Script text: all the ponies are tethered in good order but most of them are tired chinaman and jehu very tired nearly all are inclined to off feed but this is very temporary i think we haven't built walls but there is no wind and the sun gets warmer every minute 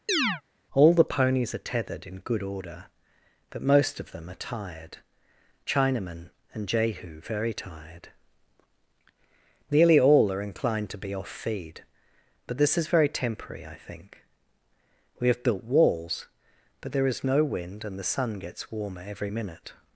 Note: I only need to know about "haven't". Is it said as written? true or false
false